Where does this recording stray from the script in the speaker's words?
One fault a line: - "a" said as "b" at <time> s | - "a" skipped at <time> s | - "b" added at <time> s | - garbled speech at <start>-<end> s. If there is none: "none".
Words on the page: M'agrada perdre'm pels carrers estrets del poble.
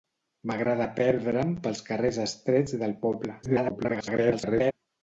- garbled speech at 3.4-4.7 s